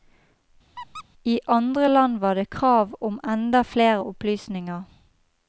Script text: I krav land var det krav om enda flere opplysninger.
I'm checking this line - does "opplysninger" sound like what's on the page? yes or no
yes